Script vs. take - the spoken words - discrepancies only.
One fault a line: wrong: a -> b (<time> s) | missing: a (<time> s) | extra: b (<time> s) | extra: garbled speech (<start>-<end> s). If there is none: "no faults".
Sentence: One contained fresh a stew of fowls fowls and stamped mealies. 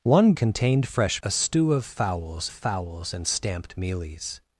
no faults